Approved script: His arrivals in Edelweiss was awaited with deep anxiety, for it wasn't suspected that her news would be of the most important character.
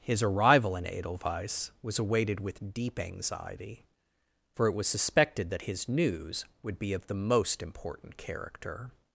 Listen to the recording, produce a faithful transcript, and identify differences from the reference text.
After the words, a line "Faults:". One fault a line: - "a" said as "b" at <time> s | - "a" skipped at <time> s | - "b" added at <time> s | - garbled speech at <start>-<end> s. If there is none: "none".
His arrival in Edelweiss was awaited with deep anxiety, for it was suspected that his news would be of the most important character.
Faults:
- "arrivals" said as "arrival" at 0.2 s
- "wasn't" said as "was" at 4.7 s
- "her" said as "his" at 5.6 s